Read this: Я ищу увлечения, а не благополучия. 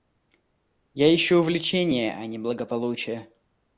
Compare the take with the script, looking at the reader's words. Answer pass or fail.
pass